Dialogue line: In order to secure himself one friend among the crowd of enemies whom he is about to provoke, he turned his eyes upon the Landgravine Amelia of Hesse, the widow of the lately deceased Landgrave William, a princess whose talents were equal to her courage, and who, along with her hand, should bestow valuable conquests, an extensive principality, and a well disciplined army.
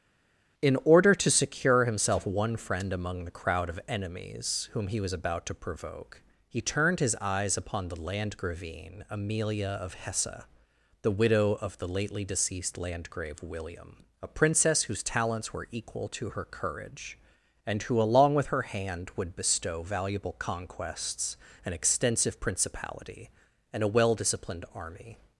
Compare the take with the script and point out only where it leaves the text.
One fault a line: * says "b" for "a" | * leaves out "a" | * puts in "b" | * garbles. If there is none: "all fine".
* says "was" for "is"
* says "would" for "should"